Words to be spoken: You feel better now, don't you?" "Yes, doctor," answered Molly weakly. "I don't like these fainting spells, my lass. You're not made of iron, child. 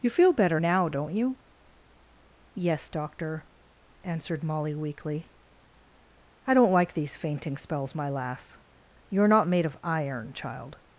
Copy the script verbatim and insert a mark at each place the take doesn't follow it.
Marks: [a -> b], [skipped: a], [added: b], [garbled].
You feel better now, don't you?" "Yes, doctor," answered Molly weakly. "I don't like these fainting spells, my lass. You're not made of iron, child.